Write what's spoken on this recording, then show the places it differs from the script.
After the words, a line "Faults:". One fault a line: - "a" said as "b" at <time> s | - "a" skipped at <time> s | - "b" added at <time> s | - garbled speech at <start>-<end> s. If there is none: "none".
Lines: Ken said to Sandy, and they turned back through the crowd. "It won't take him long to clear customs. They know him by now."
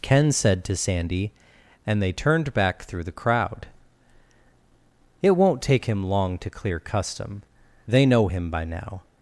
Ken said to Sandy, and they turned back through the crowd. "It won't take him long to clear custom. They know him by now."
Faults:
- "customs" said as "custom" at 6.8 s